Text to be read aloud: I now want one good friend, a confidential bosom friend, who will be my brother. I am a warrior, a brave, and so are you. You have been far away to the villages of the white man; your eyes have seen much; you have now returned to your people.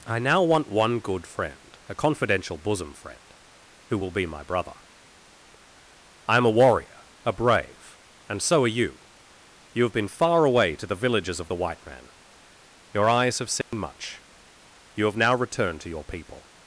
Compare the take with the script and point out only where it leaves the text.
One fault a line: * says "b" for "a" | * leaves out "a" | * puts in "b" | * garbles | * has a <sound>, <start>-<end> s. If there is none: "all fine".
* has a dropout, 13.6-13.7 s